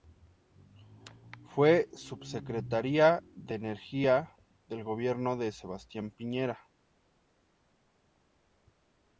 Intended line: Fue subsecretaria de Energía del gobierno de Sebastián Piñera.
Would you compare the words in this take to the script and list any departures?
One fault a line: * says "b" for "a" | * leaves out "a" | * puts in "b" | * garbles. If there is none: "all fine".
all fine